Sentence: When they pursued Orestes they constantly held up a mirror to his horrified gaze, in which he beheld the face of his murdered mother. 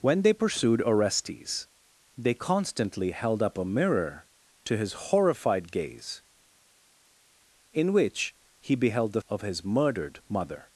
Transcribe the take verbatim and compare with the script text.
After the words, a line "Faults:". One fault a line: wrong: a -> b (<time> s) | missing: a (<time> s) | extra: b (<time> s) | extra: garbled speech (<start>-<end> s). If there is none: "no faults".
When they pursued Orestes they constantly held up a mirror to his horrified gaze, in which he beheld the of his murdered mother.
Faults:
missing: face (9.2 s)